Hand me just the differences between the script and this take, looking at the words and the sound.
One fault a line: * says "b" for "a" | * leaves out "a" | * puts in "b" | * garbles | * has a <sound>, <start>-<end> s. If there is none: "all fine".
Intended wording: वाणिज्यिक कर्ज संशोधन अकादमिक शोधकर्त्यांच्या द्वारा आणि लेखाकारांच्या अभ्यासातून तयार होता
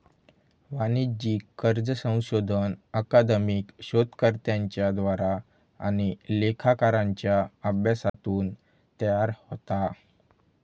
* has a dropout, 8.1-8.1 s